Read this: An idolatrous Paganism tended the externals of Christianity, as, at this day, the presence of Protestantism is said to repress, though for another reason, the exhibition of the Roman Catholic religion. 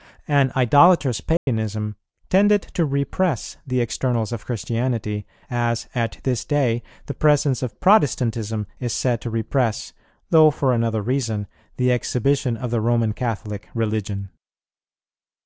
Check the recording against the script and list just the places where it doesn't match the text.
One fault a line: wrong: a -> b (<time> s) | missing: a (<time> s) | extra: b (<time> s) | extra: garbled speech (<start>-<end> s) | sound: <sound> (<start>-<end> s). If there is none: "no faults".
sound: dropout (1.4-1.5 s)
extra: to repress (2.7 s)